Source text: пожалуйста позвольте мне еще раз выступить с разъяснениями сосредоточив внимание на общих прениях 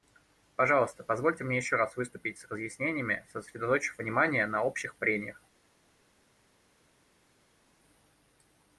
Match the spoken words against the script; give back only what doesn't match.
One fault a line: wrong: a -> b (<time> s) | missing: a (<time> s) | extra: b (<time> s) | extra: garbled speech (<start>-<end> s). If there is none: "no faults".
no faults